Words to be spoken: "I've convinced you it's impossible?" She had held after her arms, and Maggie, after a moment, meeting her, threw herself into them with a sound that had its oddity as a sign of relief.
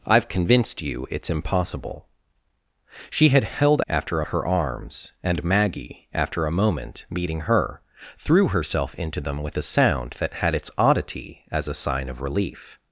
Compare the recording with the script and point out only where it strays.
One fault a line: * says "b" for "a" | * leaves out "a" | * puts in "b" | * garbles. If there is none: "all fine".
all fine